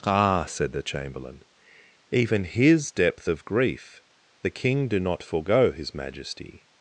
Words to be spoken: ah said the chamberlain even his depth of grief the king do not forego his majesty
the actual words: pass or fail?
pass